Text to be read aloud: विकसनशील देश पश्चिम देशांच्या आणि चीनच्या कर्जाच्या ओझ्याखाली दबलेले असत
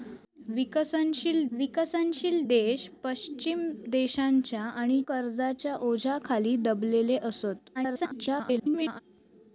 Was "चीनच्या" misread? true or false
true